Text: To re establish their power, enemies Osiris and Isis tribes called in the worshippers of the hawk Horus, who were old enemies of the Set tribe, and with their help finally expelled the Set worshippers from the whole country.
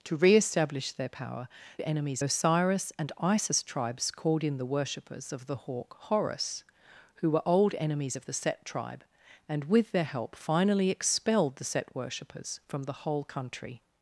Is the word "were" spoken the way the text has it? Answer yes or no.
yes